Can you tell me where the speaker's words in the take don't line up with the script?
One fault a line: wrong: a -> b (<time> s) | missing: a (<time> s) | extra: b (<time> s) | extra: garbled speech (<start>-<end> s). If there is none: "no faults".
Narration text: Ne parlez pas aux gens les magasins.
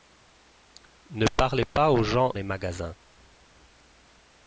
no faults